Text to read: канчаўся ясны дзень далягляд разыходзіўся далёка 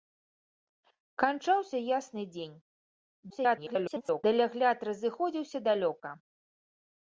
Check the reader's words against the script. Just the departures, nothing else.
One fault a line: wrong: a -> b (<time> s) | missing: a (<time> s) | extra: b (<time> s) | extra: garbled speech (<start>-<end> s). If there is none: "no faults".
extra: garbled speech (3.3-4.2 s)